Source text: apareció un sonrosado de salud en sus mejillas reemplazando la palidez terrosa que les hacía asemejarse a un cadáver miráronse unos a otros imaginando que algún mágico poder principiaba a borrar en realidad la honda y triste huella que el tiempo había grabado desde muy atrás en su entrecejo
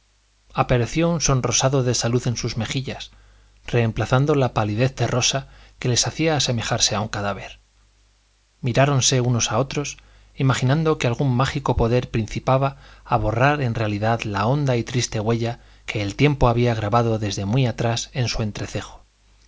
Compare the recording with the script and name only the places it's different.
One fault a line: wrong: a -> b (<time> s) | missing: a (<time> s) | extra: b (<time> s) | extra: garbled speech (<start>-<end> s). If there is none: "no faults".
no faults